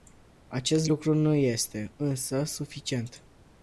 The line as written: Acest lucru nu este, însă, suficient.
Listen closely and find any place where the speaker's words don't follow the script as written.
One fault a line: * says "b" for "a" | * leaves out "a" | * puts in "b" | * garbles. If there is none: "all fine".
all fine